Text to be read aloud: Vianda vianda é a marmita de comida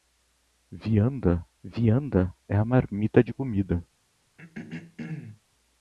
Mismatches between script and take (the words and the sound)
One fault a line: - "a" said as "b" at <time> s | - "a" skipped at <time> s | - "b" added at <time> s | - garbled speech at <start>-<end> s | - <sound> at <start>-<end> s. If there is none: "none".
- throat clearing at 4.4-5.4 s